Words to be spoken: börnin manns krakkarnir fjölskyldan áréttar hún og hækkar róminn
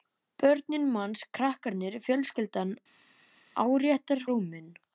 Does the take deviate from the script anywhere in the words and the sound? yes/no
yes